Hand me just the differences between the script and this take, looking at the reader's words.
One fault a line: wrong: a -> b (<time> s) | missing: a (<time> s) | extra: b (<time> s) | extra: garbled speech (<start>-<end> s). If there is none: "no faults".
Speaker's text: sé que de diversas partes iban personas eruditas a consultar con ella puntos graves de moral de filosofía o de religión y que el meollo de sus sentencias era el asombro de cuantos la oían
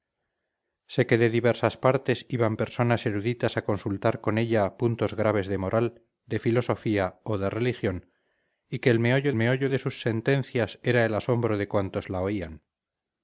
extra: meollo (9.3 s)